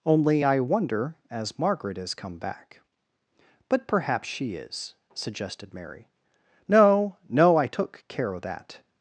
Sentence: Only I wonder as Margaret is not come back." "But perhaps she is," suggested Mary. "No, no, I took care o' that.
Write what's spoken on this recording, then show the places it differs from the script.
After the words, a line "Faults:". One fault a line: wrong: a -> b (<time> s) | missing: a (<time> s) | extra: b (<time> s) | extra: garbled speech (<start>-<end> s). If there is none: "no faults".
Only I wonder as Margaret is come back." "But perhaps she is," suggested Mary. "No, no, I took care o' that.
Faults:
missing: not (2.1 s)